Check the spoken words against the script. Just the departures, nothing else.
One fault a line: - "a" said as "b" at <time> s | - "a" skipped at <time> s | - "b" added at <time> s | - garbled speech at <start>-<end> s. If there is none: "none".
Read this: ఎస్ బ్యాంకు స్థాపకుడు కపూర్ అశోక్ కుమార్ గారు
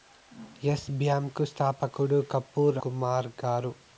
- "అశోక్" skipped at 2.8 s